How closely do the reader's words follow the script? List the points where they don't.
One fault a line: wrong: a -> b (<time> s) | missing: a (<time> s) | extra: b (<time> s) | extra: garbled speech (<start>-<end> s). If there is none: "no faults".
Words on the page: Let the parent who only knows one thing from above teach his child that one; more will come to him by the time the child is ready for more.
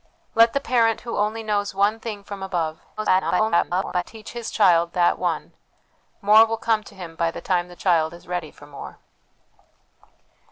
extra: garbled speech (3.0-4.0 s)